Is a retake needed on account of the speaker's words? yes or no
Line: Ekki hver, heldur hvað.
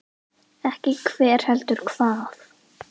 no